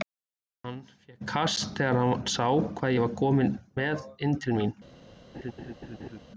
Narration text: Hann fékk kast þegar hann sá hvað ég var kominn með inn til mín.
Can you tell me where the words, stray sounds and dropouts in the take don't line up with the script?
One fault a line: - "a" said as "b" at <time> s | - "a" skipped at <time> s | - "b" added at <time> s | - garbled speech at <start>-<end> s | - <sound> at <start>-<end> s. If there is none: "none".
- laugh at 5.3-6.2 s